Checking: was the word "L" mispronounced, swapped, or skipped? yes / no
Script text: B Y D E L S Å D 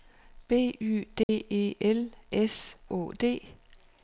no